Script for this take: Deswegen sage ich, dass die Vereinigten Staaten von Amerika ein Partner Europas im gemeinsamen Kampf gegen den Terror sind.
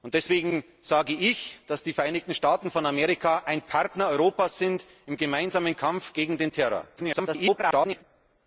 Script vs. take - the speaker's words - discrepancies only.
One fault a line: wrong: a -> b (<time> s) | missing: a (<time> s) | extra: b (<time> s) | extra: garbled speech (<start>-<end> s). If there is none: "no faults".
extra: garbled speech (7.0-8.0 s)